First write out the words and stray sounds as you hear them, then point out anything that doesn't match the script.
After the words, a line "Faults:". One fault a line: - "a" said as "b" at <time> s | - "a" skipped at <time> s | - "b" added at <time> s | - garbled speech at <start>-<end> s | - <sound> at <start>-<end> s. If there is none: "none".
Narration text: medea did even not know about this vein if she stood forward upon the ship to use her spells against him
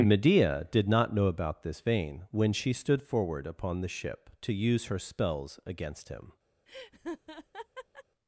medea did not know about this vein when she stood forward upon the ship to use her spells against him
Faults:
- "even" skipped at 0.9 s
- "if" said as "when" at 2.3 s
- laugh at 6.7-8.0 s